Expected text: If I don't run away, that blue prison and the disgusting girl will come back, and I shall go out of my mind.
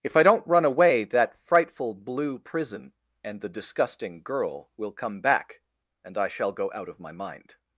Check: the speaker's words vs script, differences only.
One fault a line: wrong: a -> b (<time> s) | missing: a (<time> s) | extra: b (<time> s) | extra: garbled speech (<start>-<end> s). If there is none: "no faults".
extra: frightful (1.4 s)